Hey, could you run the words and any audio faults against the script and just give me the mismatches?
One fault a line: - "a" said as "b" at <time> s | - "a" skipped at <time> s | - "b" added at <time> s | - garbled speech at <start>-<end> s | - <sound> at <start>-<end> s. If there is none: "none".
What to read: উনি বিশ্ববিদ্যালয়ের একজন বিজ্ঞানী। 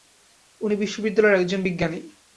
none